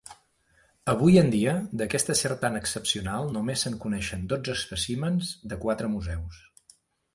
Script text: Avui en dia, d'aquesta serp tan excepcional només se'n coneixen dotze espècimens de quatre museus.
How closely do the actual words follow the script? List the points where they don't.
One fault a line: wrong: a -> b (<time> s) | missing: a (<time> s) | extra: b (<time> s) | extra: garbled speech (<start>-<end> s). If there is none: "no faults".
no faults